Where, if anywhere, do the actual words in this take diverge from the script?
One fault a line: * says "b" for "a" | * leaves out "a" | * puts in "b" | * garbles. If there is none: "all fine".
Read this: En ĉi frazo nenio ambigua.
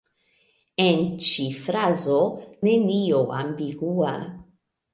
all fine